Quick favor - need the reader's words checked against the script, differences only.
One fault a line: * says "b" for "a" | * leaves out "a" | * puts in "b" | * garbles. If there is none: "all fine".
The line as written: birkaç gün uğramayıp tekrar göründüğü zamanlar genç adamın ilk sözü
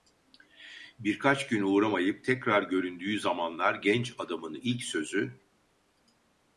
all fine